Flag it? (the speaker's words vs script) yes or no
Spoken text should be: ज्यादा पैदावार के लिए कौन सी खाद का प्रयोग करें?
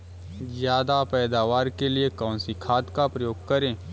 no